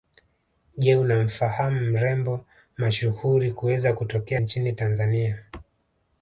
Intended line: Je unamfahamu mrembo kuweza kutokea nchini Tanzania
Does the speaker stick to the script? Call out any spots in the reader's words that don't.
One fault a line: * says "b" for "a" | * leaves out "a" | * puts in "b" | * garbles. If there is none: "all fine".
* puts in "mashuhuri"